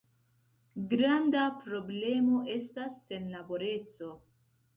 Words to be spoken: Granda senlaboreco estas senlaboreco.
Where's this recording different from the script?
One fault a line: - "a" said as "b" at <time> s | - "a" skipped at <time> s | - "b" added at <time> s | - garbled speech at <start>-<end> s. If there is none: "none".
- "senlaboreco" said as "problemo" at 1.6 s